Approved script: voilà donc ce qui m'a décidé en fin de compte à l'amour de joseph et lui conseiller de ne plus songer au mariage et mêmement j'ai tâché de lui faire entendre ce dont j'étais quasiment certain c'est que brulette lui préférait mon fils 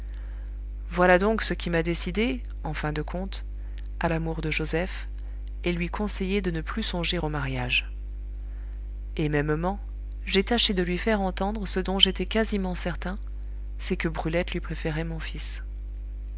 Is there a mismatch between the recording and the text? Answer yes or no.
no